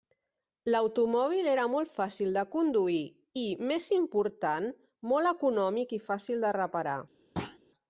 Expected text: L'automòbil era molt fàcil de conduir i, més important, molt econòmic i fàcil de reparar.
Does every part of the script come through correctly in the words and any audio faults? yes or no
no